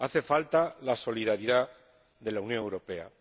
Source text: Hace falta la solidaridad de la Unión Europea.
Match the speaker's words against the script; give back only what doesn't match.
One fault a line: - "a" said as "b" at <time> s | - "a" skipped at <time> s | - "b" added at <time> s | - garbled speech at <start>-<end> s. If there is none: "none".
none